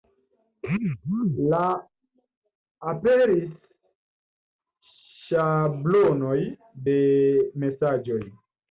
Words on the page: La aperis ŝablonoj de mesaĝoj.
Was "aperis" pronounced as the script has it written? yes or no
yes